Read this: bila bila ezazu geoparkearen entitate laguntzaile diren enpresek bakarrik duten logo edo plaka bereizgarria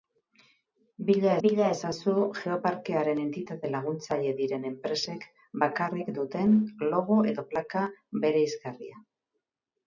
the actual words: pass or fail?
pass